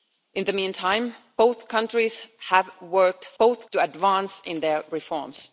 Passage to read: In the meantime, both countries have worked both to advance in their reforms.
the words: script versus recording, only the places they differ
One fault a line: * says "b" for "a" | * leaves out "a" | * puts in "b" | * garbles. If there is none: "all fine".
all fine